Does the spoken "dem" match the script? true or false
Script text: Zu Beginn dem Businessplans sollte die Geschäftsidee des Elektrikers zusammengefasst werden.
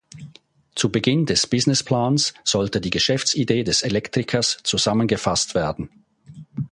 false